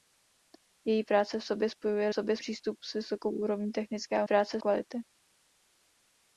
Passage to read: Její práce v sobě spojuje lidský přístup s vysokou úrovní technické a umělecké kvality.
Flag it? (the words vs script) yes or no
yes